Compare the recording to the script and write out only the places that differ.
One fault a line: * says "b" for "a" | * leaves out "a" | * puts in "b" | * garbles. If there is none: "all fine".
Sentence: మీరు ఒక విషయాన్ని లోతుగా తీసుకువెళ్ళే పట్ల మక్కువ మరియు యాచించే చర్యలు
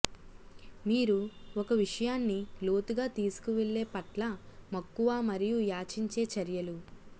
all fine